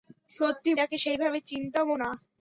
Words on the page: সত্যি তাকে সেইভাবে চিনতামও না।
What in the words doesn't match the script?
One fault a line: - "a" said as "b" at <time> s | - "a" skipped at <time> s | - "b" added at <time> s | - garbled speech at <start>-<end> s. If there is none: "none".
none